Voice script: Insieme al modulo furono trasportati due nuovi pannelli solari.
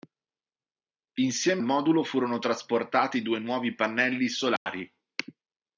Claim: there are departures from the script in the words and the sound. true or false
true